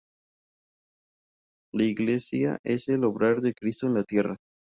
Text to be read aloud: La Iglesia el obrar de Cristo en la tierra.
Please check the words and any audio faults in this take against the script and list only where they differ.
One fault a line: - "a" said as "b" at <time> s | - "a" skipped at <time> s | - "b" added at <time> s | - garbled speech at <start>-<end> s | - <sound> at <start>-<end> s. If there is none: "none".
- "es" added at 2.6 s